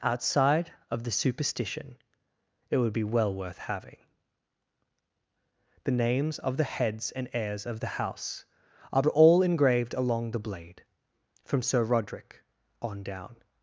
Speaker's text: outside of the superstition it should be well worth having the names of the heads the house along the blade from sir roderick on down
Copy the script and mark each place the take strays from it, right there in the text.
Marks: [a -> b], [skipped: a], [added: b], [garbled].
outside of the superstition it [should -> would] be well worth having the names of the heads [added: and heirs of] the house [added: are all engraved] along the blade from sir roderick on down